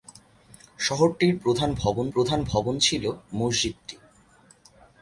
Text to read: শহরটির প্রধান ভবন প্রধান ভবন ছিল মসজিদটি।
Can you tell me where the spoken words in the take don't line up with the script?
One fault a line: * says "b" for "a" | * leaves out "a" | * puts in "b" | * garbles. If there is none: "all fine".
all fine